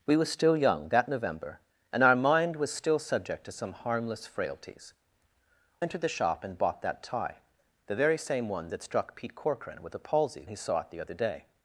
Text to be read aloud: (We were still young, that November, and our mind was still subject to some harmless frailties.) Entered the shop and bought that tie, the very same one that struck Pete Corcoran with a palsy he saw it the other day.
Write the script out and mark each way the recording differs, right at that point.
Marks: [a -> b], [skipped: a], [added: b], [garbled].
(We were still young, that November, and our mind was still subject to some harmless frailties.) Entered the shop and bought that tie, the very same one that struck Pete Corcoran with a palsy he saw it the other day.